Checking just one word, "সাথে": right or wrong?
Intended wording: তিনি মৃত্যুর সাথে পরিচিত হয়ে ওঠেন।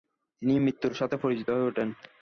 right